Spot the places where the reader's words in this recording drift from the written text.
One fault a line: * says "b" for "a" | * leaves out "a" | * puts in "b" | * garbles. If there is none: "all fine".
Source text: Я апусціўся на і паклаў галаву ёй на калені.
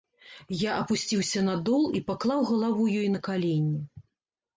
* puts in "дол"